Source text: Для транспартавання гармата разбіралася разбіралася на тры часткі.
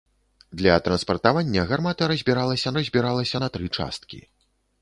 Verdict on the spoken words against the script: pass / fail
pass